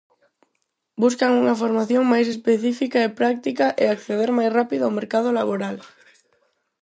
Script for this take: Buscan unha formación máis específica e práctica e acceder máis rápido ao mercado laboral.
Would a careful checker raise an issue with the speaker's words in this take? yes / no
no